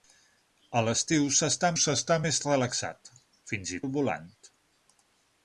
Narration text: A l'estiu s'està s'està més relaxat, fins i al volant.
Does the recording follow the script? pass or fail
pass